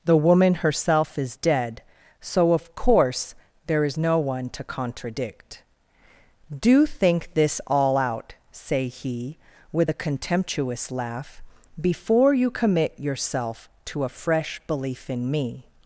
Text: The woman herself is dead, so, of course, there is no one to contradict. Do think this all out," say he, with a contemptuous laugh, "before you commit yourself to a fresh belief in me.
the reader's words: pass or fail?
pass